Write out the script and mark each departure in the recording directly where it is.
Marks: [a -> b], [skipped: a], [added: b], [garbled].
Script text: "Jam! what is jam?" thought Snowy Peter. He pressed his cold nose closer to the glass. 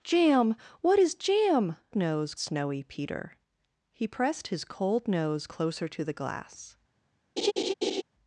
"Jam! what is jam?" [thought -> nose] Snowy Peter. He pressed his cold nose closer to the glass.